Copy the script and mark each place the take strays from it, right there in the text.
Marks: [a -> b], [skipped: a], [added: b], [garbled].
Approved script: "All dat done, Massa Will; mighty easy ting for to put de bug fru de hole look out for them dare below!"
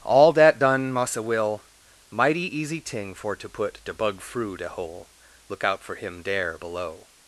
"All dat done, Massa Will; mighty easy ting for to put de bug fru de hole look out for [them -> him] dare below!"